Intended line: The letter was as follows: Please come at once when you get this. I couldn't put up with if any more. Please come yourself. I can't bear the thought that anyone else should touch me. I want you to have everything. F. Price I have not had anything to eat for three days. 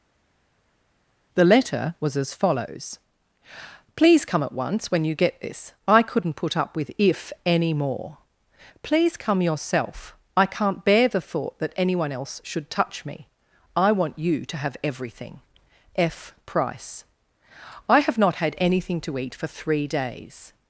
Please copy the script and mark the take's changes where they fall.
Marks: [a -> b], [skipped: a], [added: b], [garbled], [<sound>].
The letter was as follows: Please come at once when you get this. I couldn't put up with if any more. Please come yourself. I can't bear the thought that anyone else should touch me. I want you to have everything. F. Price I have not had anything to eat for three days.